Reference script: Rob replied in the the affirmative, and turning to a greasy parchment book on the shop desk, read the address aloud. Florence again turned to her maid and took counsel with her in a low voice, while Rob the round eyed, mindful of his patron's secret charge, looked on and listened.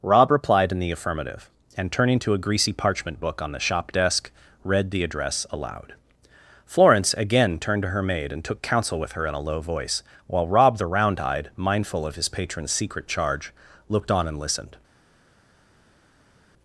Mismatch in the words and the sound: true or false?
true